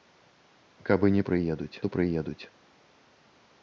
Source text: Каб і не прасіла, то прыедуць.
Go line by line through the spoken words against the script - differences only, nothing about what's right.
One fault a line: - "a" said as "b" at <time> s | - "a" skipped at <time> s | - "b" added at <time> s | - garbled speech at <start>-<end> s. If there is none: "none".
- "прасіла" said as "прыедуць" at 1.3 s